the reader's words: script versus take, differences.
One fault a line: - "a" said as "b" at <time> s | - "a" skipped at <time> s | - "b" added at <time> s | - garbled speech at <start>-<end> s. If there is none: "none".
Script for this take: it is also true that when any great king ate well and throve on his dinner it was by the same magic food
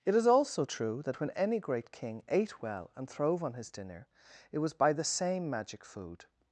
none